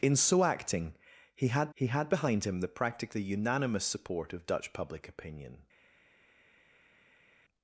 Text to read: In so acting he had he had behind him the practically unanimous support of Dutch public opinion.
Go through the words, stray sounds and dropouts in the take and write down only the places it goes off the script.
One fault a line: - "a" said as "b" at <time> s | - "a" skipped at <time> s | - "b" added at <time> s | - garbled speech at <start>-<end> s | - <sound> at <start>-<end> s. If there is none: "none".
none